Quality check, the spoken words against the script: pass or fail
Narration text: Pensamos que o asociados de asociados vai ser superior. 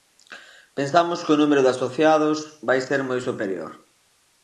fail